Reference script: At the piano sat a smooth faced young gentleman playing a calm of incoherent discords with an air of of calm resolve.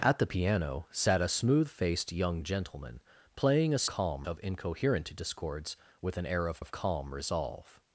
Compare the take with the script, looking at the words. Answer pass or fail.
pass